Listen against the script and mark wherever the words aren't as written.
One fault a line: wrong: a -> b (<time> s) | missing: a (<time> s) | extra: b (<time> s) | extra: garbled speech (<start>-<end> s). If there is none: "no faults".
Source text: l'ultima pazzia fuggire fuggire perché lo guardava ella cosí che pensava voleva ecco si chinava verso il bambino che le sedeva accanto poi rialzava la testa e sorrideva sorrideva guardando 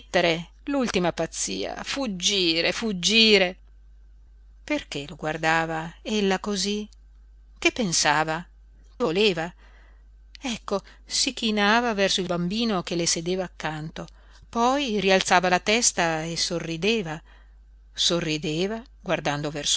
no faults